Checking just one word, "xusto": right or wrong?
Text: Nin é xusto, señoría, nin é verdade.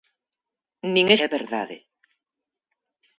wrong